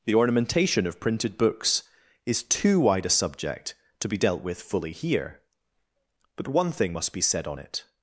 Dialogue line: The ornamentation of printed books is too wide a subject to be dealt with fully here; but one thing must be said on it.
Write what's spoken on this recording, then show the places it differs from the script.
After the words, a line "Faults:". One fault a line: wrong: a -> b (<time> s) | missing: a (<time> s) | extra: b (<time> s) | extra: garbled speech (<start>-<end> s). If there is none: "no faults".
The ornamentation of printed books is too wide a subject to be dealt with fully here; but one thing must be said on it.
Faults:
no faults